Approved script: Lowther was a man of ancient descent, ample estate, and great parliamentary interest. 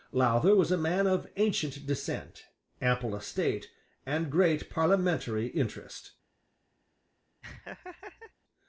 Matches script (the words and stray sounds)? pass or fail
fail